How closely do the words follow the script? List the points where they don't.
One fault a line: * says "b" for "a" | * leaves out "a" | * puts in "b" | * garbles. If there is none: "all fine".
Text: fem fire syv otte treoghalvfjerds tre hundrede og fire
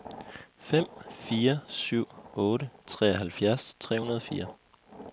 all fine